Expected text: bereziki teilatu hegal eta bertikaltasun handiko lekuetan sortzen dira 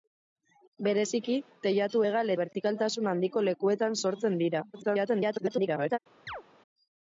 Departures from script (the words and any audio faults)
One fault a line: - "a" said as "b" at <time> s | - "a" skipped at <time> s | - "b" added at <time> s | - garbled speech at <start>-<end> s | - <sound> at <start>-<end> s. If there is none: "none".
- "eta" skipped at 2.3 s
- garbled speech at 4.7-6.0 s
- chirp at 6.3-6.4 s